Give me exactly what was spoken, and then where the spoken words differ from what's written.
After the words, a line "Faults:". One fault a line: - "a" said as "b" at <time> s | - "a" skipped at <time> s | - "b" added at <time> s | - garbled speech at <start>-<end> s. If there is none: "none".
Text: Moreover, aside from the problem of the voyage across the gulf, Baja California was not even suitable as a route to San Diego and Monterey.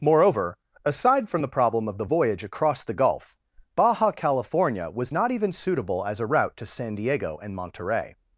Moreover, aside from the problem of the voyage across the gulf, Baja California was not even suitable as a route to San Diego and Monterey.
Faults:
none